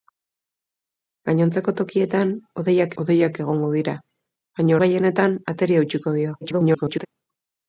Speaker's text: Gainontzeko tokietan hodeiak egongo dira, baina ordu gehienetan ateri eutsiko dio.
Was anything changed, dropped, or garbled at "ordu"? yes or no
yes